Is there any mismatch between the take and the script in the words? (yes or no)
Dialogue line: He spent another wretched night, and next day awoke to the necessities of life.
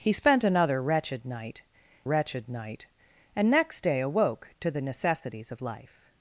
yes